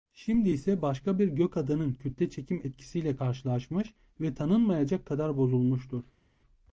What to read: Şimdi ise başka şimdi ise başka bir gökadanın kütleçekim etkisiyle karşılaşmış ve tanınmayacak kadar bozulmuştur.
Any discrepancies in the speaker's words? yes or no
yes